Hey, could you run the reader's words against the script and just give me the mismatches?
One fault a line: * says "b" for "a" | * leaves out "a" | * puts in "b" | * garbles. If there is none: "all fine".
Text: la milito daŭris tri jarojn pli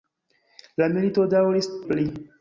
* leaves out "tri jarojn"